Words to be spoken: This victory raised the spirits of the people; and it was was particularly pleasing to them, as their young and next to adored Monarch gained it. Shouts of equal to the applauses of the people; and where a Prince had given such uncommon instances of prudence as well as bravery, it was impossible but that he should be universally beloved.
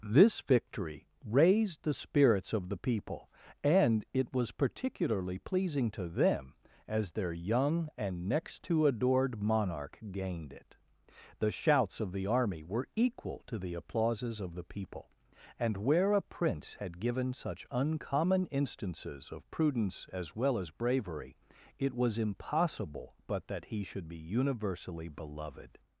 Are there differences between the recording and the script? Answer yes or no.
yes